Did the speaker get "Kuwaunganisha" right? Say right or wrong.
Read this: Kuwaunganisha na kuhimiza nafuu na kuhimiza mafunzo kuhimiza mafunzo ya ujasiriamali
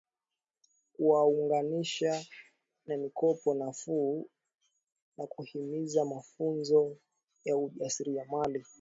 right